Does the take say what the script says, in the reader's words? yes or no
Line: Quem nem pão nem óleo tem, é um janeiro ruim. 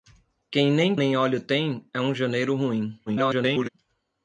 no